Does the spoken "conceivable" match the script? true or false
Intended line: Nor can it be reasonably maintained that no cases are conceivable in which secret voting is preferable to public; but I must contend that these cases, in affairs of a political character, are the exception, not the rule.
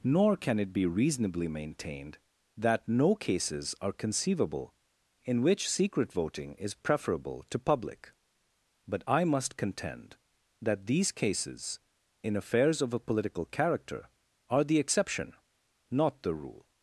true